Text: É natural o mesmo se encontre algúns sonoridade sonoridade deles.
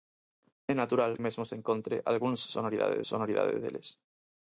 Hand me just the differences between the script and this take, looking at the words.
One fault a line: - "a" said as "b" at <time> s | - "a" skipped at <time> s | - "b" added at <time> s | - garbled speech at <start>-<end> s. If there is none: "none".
none